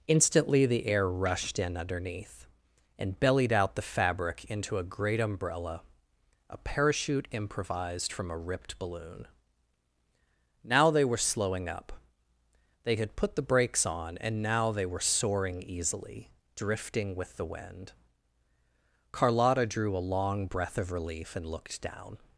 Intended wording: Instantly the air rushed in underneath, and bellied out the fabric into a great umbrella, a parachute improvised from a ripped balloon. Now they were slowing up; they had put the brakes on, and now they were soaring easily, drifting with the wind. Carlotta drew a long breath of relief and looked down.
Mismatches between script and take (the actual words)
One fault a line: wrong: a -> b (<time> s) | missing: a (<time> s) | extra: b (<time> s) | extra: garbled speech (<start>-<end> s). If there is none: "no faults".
no faults